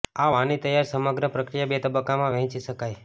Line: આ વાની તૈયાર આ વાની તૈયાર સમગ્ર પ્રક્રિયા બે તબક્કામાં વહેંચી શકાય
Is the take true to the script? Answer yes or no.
no